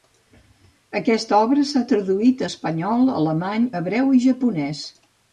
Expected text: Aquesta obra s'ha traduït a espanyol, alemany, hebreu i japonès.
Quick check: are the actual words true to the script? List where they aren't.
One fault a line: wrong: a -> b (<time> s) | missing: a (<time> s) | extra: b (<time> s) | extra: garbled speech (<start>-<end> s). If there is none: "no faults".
no faults